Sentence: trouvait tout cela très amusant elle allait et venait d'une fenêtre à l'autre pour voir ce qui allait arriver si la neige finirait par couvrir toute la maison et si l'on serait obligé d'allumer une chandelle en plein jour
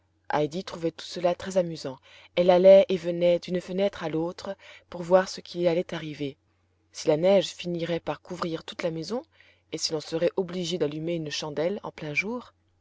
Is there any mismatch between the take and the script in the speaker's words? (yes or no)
no